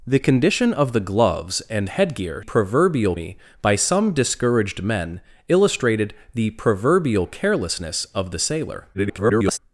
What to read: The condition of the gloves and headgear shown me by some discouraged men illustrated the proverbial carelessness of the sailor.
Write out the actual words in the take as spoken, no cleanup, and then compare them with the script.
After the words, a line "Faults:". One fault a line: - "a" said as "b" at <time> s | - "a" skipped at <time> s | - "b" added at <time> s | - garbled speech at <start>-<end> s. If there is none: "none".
The condition of the gloves and headgear proverbial me by some discouraged men illustrated the proverbial carelessness of the sailor. [garbled]
Faults:
- "shown" said as "proverbial" at 2.4 s
- garbled speech at 8.9-9.6 s